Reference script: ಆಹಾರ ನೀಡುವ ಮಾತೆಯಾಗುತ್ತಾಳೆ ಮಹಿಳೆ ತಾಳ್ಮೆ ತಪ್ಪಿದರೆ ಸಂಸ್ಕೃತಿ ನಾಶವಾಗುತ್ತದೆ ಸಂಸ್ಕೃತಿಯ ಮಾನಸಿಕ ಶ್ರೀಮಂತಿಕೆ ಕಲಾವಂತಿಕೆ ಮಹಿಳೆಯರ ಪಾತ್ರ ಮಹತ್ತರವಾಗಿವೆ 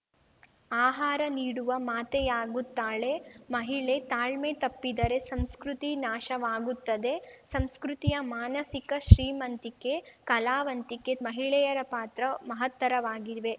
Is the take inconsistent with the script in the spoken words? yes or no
no